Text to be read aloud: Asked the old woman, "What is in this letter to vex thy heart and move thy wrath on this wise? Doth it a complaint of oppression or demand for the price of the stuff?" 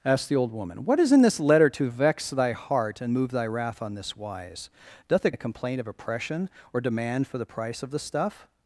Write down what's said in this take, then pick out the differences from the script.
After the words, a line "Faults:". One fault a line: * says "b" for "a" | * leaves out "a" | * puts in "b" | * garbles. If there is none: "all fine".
Asked the old woman, "What is in this letter to vex thy heart and move thy wrath on this wise? Doth it a complaint of oppression or demand for the price of the stuff?"
Faults:
all fine